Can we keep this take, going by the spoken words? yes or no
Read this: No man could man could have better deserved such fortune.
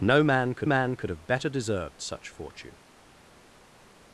yes